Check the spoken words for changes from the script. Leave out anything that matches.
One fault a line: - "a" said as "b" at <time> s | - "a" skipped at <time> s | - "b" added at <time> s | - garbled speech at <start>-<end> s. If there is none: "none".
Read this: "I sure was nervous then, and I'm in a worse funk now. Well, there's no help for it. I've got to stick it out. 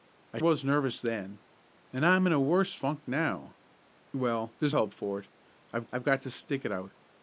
- "sure" skipped at 0.4 s
- "no" skipped at 4.7 s
- "I've" added at 5.9 s